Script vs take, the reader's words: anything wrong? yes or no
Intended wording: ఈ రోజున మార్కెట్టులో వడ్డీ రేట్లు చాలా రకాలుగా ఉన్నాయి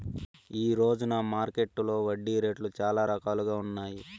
no